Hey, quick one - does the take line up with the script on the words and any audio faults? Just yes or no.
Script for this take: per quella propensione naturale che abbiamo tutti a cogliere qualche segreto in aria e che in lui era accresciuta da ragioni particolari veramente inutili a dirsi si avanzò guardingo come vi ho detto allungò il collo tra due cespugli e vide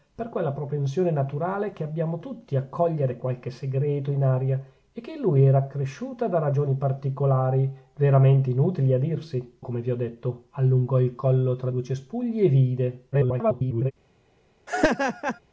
no